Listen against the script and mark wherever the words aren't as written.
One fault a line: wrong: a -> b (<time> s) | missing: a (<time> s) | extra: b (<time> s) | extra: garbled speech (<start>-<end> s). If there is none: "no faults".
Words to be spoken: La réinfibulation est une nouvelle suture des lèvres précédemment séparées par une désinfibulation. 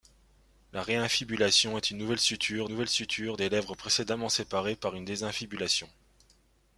extra: nouvelle suture (2.7 s)